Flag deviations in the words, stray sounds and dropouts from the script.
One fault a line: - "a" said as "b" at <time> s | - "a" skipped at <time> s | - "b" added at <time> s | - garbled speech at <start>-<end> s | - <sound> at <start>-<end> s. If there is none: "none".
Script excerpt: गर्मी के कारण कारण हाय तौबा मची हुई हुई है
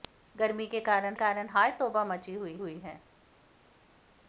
none